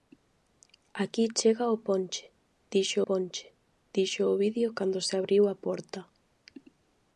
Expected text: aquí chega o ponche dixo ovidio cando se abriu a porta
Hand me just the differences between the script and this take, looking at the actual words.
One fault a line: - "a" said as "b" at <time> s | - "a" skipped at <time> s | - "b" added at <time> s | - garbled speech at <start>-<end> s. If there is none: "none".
- "ponche dixo" added at 3.1 s